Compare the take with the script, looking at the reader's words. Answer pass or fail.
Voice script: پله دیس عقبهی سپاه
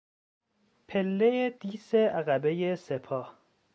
pass